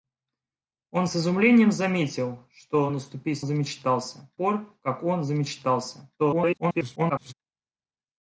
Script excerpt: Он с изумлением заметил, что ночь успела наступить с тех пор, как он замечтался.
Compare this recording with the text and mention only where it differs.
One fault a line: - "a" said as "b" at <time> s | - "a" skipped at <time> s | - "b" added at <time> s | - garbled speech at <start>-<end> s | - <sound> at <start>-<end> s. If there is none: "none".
- "ночь успела" skipped at 2.9 s
- "тех" said as "замечтался" at 3.4 s
- garbled speech at 6.2-7.3 s